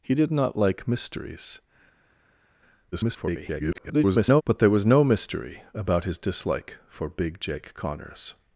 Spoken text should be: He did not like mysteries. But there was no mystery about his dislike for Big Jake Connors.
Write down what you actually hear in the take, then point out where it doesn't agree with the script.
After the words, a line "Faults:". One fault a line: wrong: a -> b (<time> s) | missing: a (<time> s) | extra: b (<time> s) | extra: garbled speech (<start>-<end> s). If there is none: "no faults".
He did not like mysteries. [garbled] But there was no mystery about his dislike for Big Jake Connors.
Faults:
extra: garbled speech (2.9-4.4 s)